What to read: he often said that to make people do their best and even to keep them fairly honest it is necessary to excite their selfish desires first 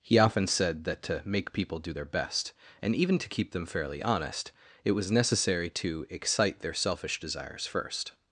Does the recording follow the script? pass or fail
fail